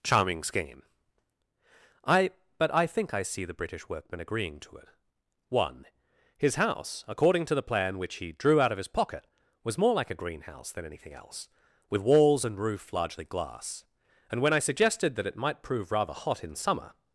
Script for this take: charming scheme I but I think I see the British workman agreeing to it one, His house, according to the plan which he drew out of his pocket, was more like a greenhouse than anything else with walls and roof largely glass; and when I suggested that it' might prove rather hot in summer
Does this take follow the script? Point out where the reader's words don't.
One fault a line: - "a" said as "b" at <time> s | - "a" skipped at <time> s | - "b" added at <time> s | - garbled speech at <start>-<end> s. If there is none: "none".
none